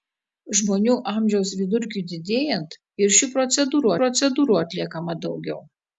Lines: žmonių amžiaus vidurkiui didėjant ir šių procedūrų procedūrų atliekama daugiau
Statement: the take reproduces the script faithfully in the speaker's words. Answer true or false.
true